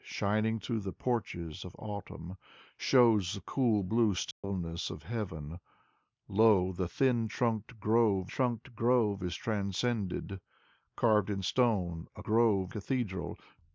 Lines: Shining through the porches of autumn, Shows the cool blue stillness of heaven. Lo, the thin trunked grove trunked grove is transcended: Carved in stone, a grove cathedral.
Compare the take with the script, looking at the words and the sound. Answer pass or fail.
fail